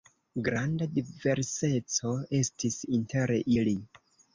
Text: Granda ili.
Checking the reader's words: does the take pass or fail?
fail